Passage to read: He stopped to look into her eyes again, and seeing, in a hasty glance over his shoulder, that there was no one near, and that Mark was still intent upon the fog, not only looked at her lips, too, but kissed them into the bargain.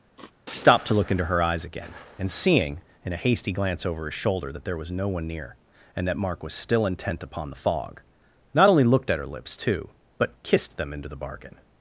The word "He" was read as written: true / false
false